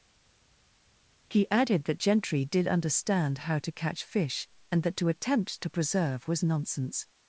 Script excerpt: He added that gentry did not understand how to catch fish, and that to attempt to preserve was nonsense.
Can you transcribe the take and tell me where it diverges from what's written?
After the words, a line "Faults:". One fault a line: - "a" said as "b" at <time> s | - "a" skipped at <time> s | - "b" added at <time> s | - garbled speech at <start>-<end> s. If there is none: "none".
He added that gentry did understand how to catch fish, and that to attempt to preserve was nonsense.
Faults:
- "not" skipped at 2.7 s